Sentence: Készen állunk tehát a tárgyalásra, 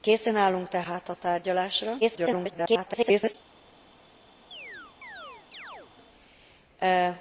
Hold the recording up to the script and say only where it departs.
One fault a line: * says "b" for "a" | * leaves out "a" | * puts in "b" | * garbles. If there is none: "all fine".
* garbles